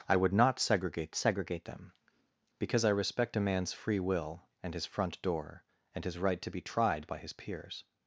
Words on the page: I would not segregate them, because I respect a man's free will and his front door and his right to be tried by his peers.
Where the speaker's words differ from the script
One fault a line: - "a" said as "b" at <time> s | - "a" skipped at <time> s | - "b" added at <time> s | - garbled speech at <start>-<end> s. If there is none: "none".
- "segregate" added at 1.1 s